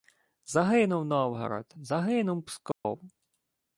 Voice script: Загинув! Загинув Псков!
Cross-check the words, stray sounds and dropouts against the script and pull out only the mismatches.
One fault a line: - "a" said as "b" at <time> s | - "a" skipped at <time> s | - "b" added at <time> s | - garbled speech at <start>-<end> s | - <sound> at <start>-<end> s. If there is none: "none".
- "Новгород" added at 1.1 s
- dropout at 2.7-2.8 s